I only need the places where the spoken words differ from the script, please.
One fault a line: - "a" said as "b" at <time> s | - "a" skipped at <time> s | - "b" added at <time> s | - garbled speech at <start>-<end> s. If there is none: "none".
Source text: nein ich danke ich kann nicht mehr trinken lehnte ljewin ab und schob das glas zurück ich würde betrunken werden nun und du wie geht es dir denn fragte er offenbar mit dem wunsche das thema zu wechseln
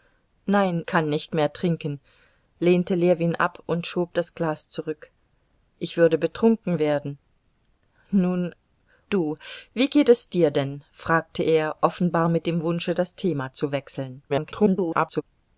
- "ich danke ich" skipped at 0.8 s
- "und" skipped at 8.5 s
- garbled speech at 14.3-15.2 s